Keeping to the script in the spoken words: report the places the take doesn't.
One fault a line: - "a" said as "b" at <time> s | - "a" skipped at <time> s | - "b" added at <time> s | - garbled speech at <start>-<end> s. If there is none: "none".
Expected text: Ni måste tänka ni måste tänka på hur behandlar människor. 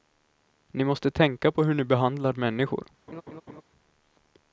- "ni måste tänka" skipped at 1.5 s
- "ni" added at 1.7 s